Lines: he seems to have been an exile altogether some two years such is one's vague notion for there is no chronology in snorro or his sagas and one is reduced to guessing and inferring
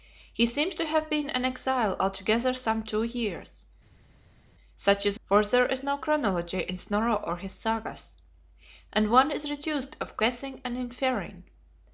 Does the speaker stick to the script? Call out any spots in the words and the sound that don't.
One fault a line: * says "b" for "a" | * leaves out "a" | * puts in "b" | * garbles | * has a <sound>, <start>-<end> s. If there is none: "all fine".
* leaves out "one's vague notion"